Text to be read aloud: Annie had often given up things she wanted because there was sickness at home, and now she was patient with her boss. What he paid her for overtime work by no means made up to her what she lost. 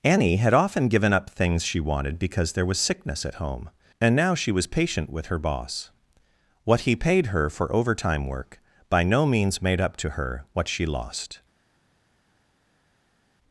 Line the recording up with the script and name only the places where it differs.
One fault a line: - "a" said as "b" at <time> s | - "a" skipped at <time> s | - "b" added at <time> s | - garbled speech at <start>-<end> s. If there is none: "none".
none